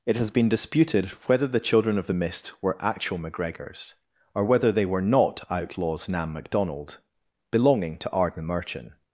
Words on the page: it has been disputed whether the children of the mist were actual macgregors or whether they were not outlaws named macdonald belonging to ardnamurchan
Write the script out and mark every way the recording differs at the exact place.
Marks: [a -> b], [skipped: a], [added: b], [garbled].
it has been disputed whether the children of the mist were actual macgregors or whether they were not outlaws [named -> nam] macdonald belonging to ardnamurchan